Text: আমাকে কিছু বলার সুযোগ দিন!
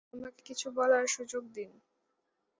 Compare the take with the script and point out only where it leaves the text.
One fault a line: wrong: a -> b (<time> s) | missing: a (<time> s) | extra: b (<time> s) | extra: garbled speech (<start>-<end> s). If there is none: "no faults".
no faults